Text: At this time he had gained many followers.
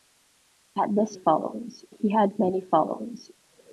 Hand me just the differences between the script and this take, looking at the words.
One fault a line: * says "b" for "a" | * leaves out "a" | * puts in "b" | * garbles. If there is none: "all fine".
* says "followers" for "time"
* leaves out "gained"